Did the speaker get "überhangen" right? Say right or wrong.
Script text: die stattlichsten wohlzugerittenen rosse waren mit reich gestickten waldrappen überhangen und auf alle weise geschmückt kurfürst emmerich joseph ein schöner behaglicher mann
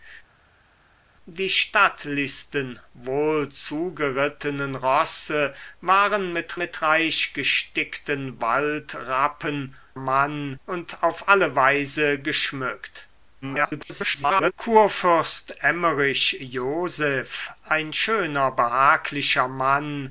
wrong